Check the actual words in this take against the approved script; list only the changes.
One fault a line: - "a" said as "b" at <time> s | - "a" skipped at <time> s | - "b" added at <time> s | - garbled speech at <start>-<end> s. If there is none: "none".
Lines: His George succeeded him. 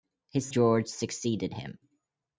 none